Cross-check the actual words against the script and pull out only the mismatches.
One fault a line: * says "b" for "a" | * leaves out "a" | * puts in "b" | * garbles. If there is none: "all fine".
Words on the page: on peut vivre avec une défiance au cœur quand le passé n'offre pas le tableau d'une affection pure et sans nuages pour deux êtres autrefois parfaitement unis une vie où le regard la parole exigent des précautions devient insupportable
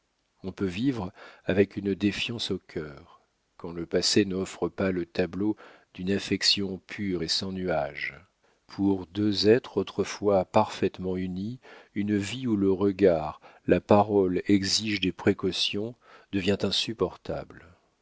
all fine